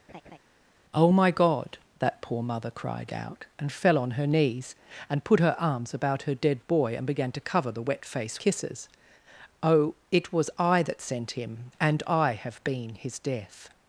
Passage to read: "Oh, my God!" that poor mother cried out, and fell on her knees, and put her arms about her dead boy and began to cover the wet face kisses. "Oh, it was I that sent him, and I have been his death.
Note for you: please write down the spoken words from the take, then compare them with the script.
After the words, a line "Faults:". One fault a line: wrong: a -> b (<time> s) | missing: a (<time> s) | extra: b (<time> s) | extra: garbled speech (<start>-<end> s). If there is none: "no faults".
"Oh, my God!" that poor mother cried out, and fell on her knees, and put her arms about her dead boy and began to cover the wet face kisses. "Oh, it was I that sent him, and I have been his death.
Faults:
no faults